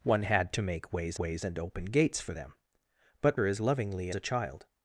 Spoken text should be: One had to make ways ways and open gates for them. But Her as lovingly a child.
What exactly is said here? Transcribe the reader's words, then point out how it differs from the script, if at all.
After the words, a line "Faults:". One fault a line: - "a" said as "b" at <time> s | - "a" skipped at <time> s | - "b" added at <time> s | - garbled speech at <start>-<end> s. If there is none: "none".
One had to make ways ways and open gates for them. But Her as lovingly a child.
Faults:
none